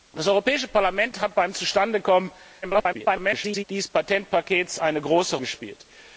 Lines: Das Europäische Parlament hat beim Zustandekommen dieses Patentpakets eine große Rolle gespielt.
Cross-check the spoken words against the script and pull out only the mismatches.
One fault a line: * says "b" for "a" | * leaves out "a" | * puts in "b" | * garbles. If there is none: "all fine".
* garbles
* leaves out "Rolle"